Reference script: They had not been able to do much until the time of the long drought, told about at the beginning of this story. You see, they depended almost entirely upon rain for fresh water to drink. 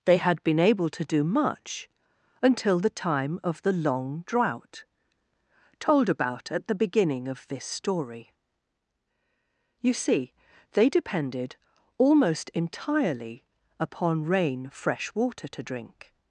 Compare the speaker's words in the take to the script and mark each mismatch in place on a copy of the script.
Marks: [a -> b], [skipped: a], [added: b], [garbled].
They had [skipped: not] been able to do much until the time of the long drought, told about at the beginning of this story. You see, they depended almost entirely upon rain [skipped: for] fresh water to drink.